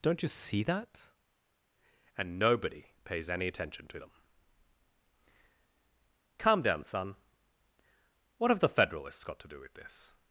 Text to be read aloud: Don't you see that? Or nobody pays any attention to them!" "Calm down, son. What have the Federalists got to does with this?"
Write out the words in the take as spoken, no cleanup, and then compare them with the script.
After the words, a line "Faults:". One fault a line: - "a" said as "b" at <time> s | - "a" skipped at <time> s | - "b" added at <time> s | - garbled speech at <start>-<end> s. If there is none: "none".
Don't you see that? And nobody pays any attention to them!" "Calm down, son. What have the Federalists got to do with this?"
Faults:
- "Or" said as "And" at 2.2 s
- "does" said as "do" at 9.5 s